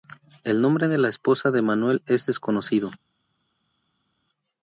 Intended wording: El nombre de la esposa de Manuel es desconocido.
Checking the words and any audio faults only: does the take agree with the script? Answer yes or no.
yes